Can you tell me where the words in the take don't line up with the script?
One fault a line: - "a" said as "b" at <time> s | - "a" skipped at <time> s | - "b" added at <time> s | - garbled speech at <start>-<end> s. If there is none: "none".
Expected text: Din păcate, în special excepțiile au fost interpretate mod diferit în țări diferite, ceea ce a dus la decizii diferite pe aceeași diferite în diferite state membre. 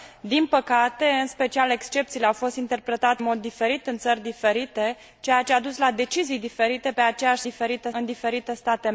none